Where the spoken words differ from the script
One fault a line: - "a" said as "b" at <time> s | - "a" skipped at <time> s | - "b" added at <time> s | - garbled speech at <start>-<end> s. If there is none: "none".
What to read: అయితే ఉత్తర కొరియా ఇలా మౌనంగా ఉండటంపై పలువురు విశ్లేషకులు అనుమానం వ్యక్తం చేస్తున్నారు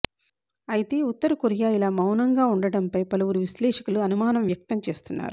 none